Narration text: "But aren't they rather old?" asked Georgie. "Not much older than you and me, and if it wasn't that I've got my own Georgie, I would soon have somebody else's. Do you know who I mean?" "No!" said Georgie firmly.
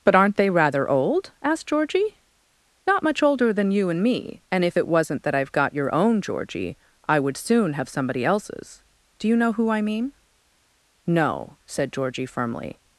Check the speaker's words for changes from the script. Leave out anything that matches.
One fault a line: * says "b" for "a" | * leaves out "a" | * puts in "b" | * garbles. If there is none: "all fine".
* says "your" for "my"